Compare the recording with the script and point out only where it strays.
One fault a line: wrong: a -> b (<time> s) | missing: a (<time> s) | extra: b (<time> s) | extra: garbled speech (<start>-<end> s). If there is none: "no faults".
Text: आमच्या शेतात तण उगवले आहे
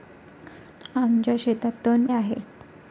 missing: उगवले (2.1 s)